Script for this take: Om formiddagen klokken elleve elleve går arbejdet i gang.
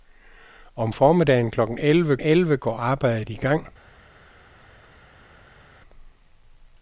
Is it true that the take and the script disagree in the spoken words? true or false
false